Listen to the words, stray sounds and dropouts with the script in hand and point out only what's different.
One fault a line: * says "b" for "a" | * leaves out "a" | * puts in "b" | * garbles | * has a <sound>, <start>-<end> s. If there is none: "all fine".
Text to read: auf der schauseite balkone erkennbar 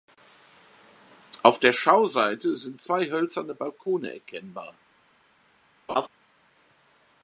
* puts in "sind zwei hölzerne"
* has a laugh, 5.9-6.1 s